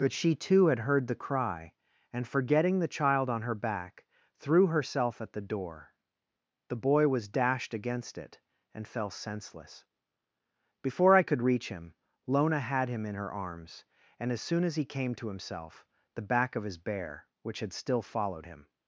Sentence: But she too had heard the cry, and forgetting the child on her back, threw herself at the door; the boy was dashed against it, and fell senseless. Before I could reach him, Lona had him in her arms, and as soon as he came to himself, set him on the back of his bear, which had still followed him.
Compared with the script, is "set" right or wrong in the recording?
wrong